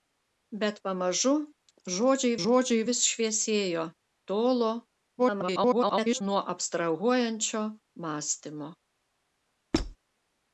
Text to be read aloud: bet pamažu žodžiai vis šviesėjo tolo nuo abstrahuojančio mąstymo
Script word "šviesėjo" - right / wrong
right